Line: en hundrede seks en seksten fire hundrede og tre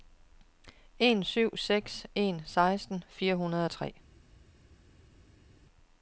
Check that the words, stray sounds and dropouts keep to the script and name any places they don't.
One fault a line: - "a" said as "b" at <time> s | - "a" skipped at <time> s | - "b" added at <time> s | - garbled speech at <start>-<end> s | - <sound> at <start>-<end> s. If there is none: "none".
- "hundrede" said as "syv" at 1.2 s